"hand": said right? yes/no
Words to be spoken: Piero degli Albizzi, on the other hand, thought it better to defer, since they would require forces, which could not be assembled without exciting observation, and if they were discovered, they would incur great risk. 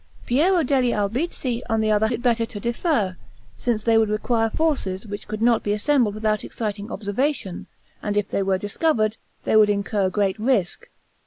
no